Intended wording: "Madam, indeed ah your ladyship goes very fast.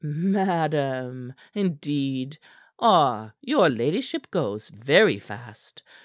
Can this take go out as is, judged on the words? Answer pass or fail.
pass